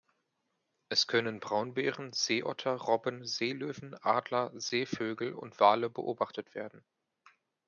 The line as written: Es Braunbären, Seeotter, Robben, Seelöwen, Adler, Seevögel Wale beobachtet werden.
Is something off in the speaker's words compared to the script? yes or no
yes